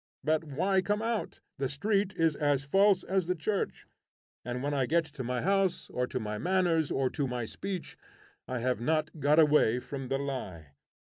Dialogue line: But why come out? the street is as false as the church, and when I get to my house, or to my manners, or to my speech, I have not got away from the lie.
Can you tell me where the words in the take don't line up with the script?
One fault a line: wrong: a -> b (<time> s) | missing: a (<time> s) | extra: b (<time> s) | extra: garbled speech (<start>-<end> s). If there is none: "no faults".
no faults